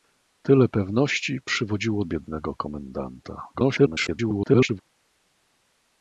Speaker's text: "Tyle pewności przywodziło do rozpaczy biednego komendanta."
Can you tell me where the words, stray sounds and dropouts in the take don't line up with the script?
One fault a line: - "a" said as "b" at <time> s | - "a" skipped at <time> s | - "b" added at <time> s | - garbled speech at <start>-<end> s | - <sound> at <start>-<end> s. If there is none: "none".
- "do rozpaczy" skipped at 2.0 s
- garbled speech at 3.5-4.8 s